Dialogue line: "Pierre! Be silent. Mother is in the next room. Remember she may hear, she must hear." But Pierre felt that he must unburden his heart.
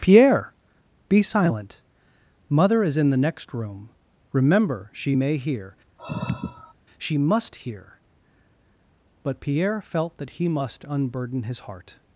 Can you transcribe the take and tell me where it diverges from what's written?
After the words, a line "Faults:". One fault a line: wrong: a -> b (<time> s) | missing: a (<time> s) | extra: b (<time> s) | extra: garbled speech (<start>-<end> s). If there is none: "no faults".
"Pierre! Be silent. Mother is in the next room. Remember she may hear, she must hear." But Pierre felt that he must unburden his heart.
Faults:
no faults